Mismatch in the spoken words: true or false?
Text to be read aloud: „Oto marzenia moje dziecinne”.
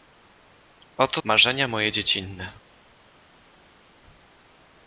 false